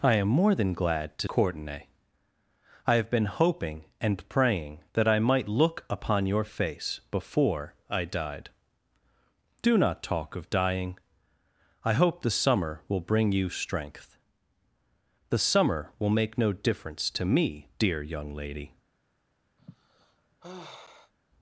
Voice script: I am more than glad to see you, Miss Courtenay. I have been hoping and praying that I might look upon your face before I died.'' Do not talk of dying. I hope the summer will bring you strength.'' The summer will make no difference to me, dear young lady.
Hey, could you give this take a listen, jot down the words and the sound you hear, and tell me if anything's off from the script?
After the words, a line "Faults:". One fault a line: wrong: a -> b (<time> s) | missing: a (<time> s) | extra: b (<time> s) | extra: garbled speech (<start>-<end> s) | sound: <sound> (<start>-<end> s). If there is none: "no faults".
I am more than glad to Courtenay. I have been hoping and praying that I might look upon your face before I died.'' Do not talk of dying. I hope the summer will bring you strength.'' The summer will make no difference to me, dear young lady.
Faults:
missing: see you Miss (1.3 s)
sound: sigh (19.6-21.1 s)